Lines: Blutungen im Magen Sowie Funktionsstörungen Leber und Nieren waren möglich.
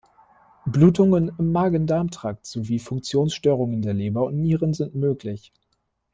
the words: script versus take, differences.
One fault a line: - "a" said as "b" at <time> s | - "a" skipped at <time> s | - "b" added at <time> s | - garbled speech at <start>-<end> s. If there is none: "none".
- "Darm Trakt" added at 1.9 s
- "der" added at 3.8 s
- "waren" said as "sind" at 4.7 s